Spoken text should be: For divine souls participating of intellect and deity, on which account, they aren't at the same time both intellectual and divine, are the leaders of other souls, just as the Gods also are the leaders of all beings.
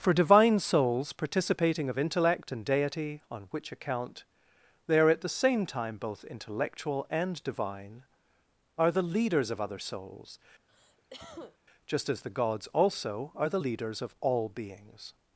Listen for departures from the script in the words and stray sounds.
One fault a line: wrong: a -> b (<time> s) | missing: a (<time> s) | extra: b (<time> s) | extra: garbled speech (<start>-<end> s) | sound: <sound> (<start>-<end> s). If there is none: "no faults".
wrong: aren't -> are (5.0 s)
sound: cough (10.7-11.6 s)